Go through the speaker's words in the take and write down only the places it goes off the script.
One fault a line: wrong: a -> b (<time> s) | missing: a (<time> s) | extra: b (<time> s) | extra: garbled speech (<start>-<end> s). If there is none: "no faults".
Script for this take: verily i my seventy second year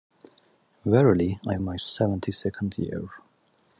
no faults